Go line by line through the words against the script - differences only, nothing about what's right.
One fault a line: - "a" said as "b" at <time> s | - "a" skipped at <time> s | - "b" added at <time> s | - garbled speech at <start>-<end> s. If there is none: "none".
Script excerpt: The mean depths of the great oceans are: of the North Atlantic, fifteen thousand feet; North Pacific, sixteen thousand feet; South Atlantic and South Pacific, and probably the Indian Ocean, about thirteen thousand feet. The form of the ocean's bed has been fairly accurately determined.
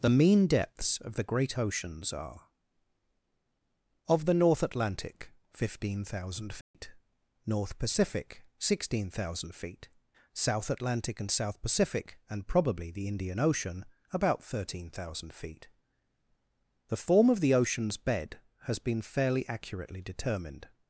none